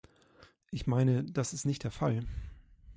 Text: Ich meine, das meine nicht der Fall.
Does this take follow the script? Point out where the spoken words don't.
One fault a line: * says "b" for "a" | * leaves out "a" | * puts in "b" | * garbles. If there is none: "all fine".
* says "ist" for "meine"